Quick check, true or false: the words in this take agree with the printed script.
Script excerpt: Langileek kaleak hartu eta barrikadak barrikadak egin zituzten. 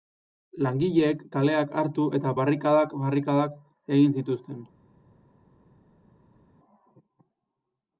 true